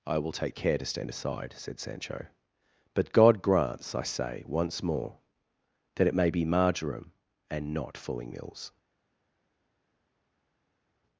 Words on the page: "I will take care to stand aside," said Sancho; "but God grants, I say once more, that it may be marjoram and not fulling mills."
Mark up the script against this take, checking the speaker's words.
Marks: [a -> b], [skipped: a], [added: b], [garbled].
"I will take care to stand aside," said Sancho; "but God grants, I say once more, that it may be marjoram and not fulling mills."